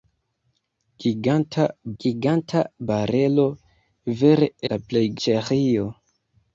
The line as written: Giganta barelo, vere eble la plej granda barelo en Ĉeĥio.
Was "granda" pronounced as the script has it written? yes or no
no